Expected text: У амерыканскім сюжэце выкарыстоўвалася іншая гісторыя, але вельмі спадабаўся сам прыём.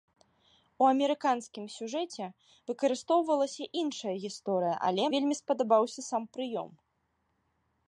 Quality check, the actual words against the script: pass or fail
pass